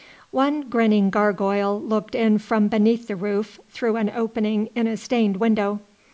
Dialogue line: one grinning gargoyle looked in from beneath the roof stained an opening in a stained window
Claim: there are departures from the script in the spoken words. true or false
true